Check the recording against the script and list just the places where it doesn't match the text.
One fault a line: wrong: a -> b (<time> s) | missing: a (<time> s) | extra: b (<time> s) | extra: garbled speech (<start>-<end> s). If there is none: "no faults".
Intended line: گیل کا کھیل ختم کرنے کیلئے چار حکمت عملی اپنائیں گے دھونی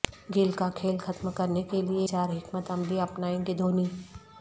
no faults